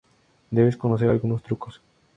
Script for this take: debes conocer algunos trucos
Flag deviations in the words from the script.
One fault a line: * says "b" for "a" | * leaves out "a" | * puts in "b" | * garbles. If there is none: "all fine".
all fine